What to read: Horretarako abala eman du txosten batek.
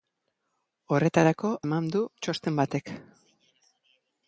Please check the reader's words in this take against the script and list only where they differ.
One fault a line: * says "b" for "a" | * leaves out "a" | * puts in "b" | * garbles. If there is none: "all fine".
* leaves out "abala"